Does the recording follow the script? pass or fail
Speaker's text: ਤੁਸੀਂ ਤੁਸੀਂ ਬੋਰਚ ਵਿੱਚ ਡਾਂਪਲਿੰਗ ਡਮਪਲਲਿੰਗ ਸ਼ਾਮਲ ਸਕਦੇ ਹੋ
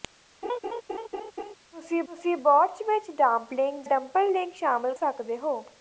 pass